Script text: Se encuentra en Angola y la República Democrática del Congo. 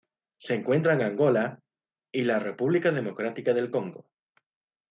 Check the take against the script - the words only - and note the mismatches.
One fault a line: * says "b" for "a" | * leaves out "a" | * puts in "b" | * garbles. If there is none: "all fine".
all fine